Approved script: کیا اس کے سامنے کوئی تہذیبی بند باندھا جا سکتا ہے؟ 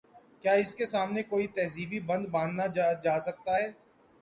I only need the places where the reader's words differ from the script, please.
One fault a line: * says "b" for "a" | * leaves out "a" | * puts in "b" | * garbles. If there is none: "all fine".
all fine